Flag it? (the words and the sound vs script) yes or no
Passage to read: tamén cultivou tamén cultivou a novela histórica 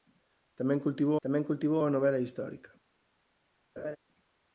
yes